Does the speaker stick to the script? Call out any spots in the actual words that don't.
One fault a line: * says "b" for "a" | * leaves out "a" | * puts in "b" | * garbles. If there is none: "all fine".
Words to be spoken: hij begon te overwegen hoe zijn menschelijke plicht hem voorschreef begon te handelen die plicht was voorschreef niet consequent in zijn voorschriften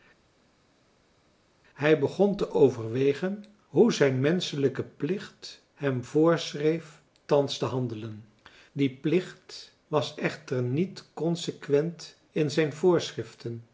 * says "thans" for "begon"
* says "echter" for "voorschreef"